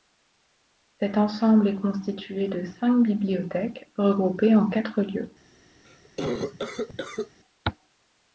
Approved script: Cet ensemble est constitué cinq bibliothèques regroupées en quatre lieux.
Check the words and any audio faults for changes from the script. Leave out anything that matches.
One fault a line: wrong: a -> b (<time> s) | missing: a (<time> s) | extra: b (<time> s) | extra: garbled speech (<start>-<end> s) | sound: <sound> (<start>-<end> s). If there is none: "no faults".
extra: de (2.5 s)
sound: cough (5.8-7.4 s)